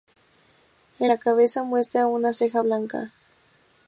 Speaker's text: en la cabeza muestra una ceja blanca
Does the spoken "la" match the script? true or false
true